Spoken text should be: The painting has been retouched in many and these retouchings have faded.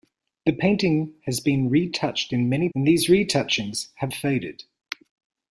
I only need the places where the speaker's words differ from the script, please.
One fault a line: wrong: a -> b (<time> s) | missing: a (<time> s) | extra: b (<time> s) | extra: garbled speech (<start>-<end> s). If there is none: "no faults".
no faults